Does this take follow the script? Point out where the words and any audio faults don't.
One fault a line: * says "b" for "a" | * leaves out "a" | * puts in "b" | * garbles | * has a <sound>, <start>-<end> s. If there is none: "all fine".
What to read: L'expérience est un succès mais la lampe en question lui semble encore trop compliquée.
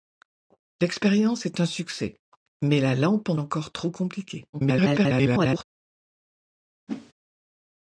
* leaves out "question lui semble"
* garbles
* has a whoosh, 6.9-7.1 s